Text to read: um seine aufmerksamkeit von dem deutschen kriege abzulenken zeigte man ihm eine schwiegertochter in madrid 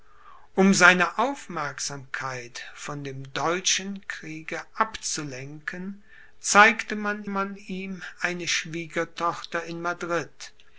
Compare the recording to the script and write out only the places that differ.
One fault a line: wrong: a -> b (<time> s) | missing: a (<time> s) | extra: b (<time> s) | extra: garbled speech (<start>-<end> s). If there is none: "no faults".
extra: man (7.3 s)